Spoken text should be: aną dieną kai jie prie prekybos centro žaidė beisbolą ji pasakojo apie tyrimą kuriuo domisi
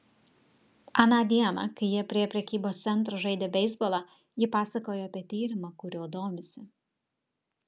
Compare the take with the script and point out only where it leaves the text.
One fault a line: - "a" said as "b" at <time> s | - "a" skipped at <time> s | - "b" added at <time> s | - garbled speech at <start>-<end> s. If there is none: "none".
none